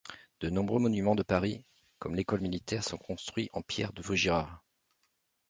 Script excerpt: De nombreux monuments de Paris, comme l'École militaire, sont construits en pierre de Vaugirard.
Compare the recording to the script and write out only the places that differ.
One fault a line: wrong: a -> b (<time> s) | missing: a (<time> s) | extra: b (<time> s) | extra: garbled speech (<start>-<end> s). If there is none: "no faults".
no faults